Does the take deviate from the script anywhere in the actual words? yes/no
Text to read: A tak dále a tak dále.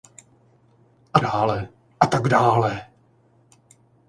yes